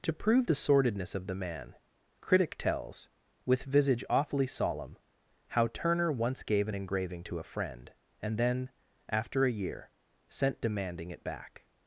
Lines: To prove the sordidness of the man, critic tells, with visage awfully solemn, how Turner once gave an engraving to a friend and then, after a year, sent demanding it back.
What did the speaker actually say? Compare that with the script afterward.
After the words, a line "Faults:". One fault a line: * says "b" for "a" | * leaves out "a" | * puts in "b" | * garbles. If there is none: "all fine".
To prove the sordidness of the man, critic tells, with visage awfully solemn, how Turner once gave an engraving to a friend and then, after a year, sent demanding it back.
Faults:
all fine